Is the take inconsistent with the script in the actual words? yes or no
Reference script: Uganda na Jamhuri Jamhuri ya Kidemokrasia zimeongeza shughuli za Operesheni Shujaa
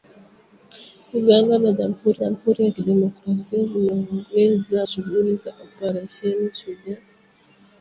no